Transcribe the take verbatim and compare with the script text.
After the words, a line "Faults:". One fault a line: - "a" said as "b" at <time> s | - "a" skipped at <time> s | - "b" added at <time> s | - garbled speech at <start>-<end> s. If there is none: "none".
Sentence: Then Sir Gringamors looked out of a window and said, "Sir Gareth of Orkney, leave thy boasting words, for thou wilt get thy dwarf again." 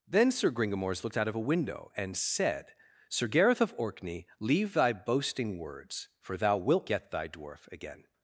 Then Sir Gringamors looked out of a window and said, "Sir Gareth of Orkney, leave thy boasting words, for thou wilt get thy dwarf again."
Faults:
none